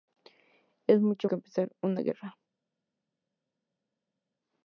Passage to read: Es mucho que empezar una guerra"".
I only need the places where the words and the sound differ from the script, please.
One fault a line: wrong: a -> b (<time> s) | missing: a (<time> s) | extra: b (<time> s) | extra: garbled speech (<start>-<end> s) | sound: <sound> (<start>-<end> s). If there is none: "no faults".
no faults